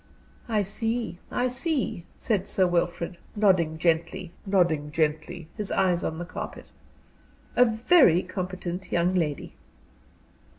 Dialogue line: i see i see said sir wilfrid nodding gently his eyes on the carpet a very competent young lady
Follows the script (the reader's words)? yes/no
no